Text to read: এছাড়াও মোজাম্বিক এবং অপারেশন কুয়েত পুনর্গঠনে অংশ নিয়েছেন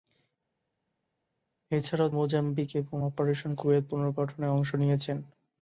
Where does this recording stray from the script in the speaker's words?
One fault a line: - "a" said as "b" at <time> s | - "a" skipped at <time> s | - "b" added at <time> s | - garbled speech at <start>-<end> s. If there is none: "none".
none